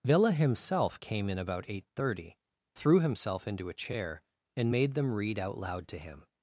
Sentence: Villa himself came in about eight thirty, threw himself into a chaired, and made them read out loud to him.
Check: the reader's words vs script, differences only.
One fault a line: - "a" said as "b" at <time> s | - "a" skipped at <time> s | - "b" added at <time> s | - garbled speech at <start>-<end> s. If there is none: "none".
- "chaired" said as "chair" at 3.7 s